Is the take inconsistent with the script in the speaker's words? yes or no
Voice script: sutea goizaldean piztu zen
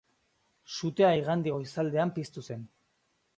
yes